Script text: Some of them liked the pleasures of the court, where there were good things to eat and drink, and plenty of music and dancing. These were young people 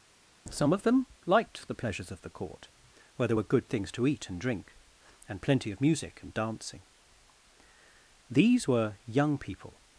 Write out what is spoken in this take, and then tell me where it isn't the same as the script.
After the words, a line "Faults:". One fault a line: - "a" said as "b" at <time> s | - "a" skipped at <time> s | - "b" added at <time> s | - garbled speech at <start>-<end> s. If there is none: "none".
Some of them liked the pleasures of the court, where there were good things to eat and drink, and plenty of music and dancing. These were young people
Faults:
none